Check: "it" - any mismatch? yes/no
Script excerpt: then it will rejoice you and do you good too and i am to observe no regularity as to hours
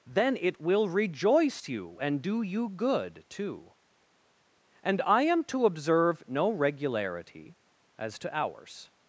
no